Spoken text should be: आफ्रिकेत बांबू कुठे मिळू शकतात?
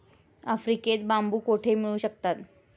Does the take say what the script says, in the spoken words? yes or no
yes